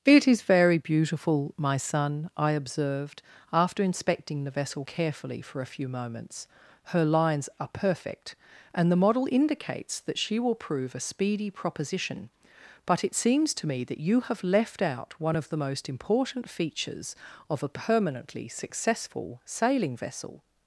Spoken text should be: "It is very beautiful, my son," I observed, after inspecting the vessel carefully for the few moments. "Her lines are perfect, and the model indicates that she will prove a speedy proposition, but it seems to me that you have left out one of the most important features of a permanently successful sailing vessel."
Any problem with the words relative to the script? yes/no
yes